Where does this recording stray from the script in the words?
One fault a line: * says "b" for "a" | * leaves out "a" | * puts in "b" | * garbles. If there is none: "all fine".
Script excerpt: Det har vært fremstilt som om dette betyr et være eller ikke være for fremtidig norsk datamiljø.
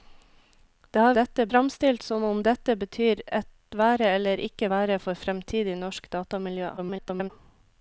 * says "dette" for "vært"
* garbles